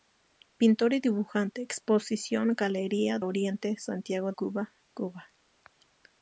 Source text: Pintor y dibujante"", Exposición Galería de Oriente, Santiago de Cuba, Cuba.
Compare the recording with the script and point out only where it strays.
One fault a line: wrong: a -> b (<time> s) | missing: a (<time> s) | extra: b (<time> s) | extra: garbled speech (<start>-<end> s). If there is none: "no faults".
missing: de (3.2 s)
missing: de (4.3 s)